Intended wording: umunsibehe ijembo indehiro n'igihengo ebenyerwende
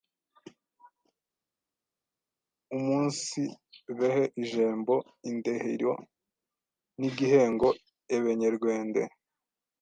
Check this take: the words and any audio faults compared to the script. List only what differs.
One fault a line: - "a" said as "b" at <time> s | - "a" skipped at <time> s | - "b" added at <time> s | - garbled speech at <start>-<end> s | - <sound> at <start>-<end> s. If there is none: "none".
none